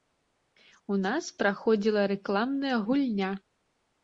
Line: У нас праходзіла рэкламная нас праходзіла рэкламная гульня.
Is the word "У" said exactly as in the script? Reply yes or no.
yes